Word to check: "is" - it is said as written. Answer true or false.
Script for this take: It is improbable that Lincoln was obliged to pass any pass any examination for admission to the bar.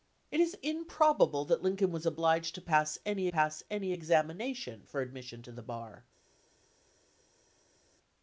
true